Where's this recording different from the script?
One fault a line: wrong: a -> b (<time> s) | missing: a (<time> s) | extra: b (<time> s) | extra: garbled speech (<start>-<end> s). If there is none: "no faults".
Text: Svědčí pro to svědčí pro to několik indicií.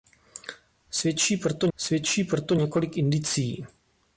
no faults